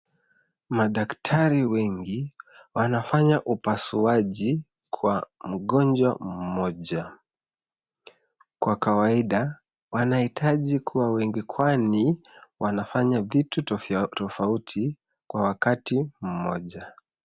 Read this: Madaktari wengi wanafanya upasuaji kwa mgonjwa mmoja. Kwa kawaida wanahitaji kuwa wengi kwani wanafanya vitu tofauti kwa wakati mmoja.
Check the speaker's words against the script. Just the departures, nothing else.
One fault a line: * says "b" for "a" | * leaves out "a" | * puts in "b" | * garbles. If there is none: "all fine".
all fine